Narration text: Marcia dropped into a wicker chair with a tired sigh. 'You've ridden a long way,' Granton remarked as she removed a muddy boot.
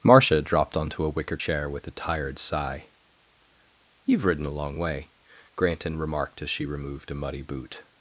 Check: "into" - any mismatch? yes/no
yes